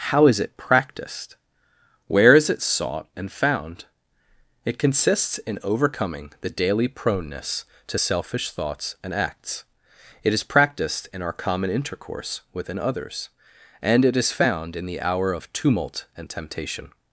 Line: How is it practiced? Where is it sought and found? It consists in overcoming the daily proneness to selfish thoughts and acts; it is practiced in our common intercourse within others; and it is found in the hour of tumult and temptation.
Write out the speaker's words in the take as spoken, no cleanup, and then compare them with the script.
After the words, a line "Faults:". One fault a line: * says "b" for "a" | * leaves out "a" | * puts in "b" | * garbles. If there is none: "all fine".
How is it practiced? Where is it sought and found? It consists in overcoming the daily proneness to selfish thoughts and acts; it is practiced in our common intercourse within others; and it is found in the hour of tumult and temptation.
Faults:
all fine